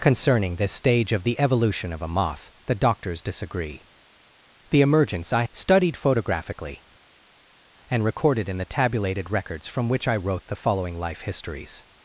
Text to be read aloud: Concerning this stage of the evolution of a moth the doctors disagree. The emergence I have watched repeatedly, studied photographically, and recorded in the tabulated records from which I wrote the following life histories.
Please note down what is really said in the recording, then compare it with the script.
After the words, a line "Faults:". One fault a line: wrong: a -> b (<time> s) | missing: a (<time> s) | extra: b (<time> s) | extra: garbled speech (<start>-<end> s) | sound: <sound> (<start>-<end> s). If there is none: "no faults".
Concerning this stage of the evolution of a moth the doctors disagree. The emergence I studied photographically, and recorded in the tabulated records from which I wrote the following life histories.
Faults:
missing: have watched repeatedly (5.4 s)